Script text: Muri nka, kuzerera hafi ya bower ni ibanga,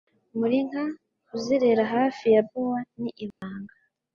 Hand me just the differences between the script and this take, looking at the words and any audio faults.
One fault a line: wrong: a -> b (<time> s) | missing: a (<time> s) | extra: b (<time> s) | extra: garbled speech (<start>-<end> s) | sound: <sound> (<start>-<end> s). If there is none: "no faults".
sound: dropout (3.3-3.4 s)